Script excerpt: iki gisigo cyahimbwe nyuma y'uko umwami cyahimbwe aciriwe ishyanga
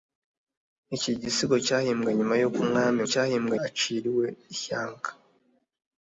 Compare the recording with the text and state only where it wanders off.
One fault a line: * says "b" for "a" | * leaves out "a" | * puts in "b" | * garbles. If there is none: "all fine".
all fine